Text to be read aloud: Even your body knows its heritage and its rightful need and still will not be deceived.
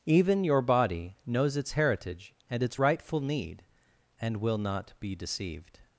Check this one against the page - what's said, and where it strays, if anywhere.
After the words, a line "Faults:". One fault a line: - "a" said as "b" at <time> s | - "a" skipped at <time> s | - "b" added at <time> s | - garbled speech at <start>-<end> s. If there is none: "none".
Even your body knows its heritage and its rightful need and will not be deceived.
Faults:
- "still" skipped at 4.4 s